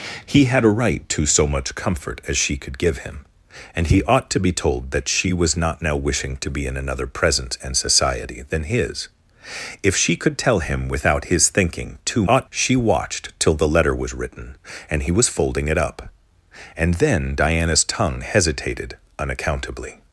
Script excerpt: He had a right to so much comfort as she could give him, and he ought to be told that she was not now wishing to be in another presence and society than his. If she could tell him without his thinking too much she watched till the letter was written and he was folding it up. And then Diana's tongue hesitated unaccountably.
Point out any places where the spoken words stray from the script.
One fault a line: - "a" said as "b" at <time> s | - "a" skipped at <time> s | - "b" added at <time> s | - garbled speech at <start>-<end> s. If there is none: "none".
- "much" said as "ought" at 12.2 s